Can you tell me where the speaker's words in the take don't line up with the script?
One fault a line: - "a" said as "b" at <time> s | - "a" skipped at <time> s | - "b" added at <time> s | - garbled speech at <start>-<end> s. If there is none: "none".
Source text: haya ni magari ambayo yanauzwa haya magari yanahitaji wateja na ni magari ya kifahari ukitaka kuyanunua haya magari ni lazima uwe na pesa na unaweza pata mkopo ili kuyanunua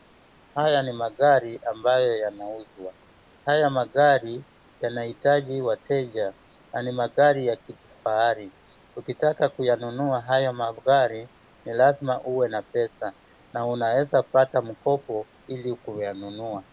none